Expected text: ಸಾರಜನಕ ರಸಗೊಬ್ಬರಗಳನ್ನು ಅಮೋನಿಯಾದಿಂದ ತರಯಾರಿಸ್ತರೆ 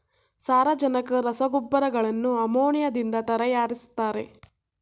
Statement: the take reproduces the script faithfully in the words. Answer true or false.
true